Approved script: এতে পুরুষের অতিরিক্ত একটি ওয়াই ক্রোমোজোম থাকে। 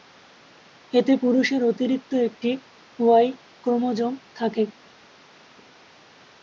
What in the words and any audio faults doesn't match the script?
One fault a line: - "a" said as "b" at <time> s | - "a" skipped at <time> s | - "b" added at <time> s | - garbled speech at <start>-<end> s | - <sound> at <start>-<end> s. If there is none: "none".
none